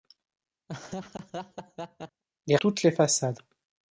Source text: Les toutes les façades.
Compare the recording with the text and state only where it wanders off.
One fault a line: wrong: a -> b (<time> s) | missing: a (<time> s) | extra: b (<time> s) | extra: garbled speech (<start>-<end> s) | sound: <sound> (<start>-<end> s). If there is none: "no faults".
sound: laugh (0.7-2.2 s)